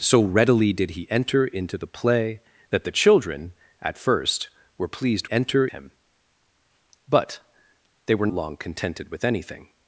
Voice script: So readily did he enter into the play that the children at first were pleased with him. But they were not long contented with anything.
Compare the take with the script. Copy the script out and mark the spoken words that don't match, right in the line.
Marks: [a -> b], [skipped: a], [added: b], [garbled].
So readily did he enter into the play that the children at first were pleased [with -> enter] him. But they were [skipped: not] long contented with anything.